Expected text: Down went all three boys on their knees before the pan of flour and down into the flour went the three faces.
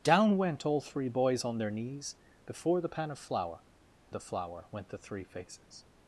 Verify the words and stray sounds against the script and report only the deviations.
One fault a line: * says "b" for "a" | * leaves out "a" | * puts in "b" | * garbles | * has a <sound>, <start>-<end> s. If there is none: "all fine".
* leaves out "and down into"